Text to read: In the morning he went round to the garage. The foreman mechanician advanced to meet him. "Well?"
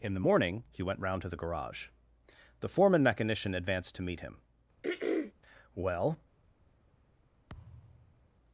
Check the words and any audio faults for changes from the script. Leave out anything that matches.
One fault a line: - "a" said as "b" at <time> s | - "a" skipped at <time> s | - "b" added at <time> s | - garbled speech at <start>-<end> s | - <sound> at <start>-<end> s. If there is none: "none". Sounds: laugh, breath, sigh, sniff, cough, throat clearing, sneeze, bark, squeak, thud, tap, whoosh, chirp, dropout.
- throat clearing at 4.8-5.3 s
- thud at 7.5-8.3 s